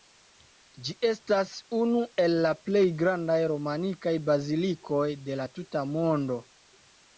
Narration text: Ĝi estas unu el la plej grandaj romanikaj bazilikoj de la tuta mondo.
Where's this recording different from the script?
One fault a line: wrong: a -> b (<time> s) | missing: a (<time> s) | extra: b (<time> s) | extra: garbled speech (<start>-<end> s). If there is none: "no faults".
no faults